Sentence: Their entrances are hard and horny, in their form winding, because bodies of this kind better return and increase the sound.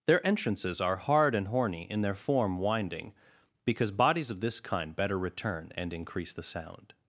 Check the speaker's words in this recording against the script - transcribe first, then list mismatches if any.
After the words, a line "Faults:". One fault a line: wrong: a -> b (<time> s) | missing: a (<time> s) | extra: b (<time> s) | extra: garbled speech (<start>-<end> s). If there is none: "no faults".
Their entrances are hard and horny, in their form winding, because bodies of this kind better return and increase the sound.
Faults:
no faults